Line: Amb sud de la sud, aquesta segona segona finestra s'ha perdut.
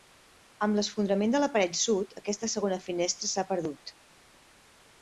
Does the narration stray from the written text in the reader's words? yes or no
yes